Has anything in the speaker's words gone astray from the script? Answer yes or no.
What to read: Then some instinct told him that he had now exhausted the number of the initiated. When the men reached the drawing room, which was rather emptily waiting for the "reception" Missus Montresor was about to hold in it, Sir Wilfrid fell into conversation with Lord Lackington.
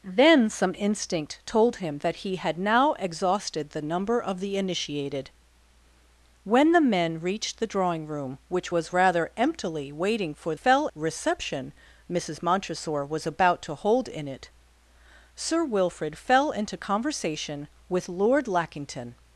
yes